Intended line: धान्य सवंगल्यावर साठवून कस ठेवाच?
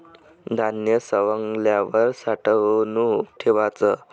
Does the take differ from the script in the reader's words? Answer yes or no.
yes